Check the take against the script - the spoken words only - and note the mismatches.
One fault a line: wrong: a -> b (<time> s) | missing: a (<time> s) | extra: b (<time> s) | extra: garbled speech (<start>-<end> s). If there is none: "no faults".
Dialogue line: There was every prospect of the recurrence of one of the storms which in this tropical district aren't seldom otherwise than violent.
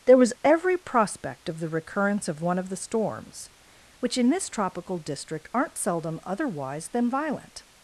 no faults